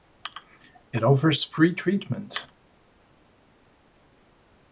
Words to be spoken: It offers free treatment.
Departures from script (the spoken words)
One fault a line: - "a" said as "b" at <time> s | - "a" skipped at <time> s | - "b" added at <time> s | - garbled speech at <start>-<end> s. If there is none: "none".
none